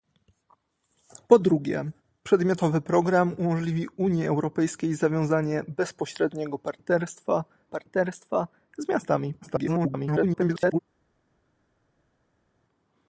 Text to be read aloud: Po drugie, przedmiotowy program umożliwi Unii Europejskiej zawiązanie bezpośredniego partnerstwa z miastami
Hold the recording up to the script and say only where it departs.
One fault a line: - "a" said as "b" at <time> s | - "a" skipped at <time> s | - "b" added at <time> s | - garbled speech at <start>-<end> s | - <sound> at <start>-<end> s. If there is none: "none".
- "partnerstwa" added at 7.7 s
- garbled speech at 9.4-10.8 s